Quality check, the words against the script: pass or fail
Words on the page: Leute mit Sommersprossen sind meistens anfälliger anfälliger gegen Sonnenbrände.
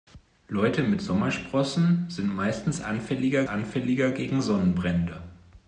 pass